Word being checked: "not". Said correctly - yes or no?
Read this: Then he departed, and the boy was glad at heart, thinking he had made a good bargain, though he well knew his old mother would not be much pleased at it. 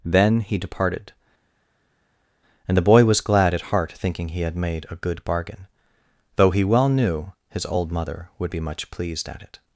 no